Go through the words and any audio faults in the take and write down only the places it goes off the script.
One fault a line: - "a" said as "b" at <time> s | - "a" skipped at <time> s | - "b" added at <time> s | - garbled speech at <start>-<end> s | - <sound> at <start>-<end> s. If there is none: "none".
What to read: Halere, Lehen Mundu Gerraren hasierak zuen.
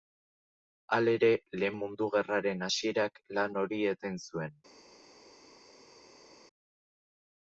- "lan hori eten" added at 3.4 s